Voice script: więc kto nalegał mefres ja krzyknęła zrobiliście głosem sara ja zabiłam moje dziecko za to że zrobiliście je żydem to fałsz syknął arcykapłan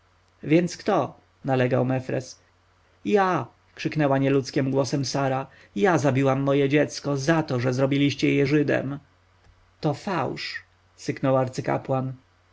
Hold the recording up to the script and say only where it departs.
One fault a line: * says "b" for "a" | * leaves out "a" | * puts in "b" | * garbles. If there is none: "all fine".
* says "nieludzkim" for "zrobiliście"